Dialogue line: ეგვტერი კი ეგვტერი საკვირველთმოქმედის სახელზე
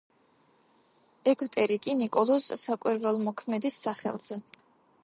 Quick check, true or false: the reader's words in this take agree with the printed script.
false